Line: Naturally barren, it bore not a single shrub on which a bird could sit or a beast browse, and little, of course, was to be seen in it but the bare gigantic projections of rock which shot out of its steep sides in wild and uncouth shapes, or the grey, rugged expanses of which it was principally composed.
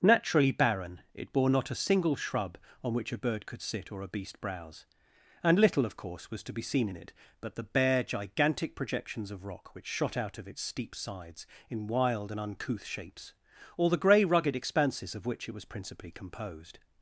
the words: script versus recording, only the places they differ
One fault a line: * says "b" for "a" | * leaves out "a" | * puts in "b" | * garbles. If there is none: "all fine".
all fine